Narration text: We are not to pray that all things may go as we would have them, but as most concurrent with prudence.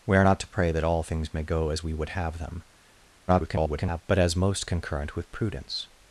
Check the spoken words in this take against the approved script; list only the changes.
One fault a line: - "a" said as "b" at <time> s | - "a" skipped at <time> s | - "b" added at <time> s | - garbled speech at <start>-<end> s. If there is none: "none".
- garbled speech at 3.3-4.0 s